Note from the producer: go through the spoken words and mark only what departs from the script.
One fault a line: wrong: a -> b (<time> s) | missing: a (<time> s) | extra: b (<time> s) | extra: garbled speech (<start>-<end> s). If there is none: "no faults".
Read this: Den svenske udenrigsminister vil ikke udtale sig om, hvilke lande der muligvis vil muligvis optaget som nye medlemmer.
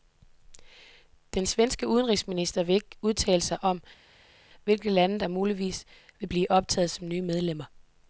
wrong: muligvis -> blive (6.2 s)